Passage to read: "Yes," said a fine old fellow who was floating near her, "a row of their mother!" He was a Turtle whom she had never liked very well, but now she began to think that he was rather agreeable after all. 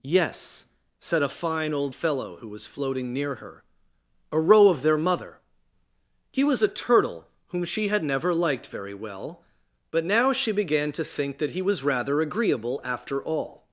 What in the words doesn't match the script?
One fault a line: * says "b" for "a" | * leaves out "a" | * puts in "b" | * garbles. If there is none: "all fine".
all fine